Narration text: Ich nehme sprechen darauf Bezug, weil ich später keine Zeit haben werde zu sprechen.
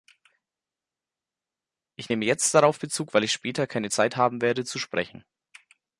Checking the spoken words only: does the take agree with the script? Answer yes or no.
no